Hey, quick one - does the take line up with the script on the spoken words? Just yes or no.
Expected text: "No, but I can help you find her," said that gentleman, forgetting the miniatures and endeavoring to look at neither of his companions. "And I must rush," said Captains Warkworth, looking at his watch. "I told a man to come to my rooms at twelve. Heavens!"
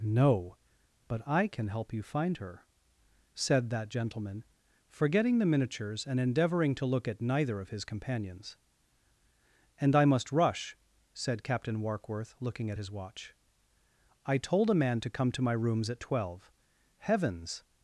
no